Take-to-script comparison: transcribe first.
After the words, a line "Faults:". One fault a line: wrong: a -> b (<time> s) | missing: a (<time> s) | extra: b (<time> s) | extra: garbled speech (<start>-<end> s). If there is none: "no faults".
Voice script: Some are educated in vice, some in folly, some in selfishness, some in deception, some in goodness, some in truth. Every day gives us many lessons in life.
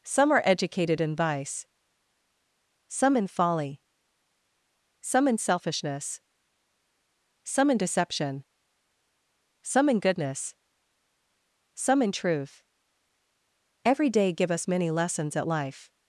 Some are educated in vice, some in folly, some in selfishness, some in deception, some in goodness, some in truth. Every day give us many lessons at life.
Faults:
wrong: gives -> give (14.3 s)
wrong: in -> at (15.3 s)